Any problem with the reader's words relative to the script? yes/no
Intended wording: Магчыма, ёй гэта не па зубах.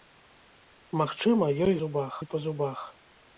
yes